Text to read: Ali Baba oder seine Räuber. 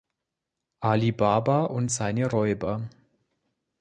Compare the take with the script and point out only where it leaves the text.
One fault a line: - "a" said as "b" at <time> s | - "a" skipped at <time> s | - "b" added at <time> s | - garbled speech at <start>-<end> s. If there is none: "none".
- "oder" said as "und" at 1.6 s